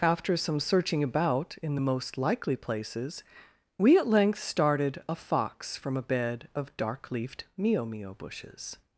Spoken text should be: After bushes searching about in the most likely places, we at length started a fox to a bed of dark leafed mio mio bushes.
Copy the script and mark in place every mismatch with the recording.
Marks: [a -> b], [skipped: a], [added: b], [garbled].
After [bushes -> some] searching about in the most likely places, we at length started a fox [to -> from] a bed of dark leafed mio mio bushes.